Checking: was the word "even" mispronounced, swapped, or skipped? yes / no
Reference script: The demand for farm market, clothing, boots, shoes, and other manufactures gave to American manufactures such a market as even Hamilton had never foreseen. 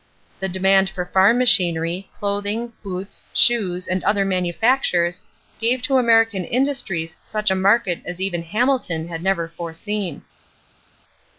no